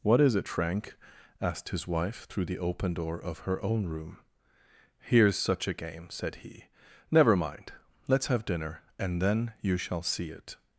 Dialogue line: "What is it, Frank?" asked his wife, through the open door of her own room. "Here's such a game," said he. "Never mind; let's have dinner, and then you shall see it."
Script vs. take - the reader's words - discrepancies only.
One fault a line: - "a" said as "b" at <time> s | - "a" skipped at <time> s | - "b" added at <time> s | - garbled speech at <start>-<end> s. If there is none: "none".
none